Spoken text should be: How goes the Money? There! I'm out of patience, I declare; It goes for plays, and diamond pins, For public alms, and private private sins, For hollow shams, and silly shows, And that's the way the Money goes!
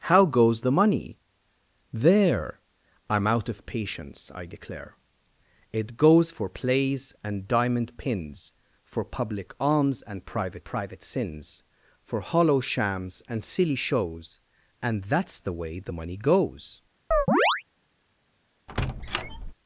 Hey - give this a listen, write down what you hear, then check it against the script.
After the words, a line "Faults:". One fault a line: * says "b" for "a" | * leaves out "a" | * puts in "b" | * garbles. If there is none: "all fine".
How goes the Money? There! I'm out of patience, I declare; It goes for plays, and diamond pins, For public alms, and private private sins, For hollow shams, and silly shows, And that's the way the Money goes!
Faults:
all fine